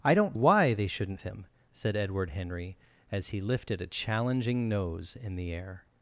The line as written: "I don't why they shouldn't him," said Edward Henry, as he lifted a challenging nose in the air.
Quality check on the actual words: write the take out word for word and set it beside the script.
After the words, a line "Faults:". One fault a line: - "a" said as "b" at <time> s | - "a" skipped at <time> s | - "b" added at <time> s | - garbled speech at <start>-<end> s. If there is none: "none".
"I don't why they shouldn't him," said Edward Henry, as he lifted a challenging nose in the air.
Faults:
none